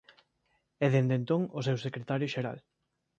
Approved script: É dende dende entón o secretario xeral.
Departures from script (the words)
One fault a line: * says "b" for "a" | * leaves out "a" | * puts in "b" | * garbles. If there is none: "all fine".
* leaves out "dende"
* puts in "seu"